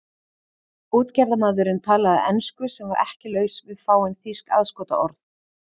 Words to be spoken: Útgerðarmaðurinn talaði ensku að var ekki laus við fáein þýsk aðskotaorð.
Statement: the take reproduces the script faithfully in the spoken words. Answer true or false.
false